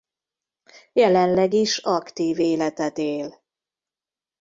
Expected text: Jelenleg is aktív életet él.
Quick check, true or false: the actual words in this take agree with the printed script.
true